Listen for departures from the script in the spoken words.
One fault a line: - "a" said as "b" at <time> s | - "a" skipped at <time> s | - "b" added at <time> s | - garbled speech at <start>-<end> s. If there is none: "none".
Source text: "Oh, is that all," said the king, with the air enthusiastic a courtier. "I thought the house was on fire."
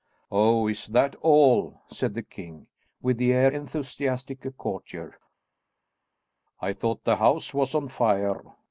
none